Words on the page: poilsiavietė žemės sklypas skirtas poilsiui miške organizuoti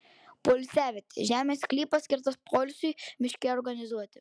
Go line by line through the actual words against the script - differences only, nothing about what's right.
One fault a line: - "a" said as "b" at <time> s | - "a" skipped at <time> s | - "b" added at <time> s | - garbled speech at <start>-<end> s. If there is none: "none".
none